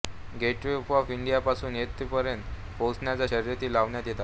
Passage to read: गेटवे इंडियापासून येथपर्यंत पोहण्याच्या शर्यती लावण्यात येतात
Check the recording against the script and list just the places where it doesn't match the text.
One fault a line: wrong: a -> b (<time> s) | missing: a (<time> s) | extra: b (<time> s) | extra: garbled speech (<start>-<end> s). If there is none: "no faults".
extra: ऑफ (0.9 s)